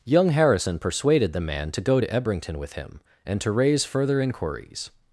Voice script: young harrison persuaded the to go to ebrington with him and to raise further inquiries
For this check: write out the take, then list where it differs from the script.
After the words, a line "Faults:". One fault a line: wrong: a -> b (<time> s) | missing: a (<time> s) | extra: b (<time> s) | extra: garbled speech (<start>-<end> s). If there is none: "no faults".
young harrison persuaded the man to go to ebrington with him and to raise further inquiries
Faults:
extra: man (1.4 s)